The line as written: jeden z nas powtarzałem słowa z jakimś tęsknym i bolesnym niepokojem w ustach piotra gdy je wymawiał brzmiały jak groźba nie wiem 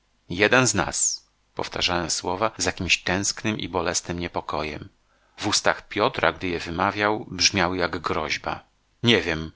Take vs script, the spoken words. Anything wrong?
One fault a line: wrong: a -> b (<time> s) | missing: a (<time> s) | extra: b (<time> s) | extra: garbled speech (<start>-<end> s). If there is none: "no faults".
no faults